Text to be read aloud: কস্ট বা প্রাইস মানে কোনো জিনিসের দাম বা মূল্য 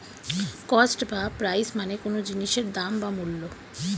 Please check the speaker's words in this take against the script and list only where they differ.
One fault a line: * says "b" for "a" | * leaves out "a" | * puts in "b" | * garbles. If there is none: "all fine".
all fine